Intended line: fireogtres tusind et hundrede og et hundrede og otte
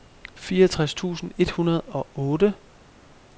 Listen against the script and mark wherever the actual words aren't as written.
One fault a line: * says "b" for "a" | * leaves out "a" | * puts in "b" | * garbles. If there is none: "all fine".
* leaves out "et hundrede og"